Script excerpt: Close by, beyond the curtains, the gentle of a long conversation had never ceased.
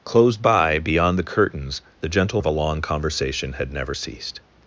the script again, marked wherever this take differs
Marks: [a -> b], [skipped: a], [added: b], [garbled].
Close by, beyond the curtains, the gentle of a long conversation had never ceased.